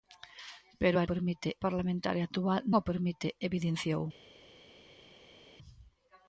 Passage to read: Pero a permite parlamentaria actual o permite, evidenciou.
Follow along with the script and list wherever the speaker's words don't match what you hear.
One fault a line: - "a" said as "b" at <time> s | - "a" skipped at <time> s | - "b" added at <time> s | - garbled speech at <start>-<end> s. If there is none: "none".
none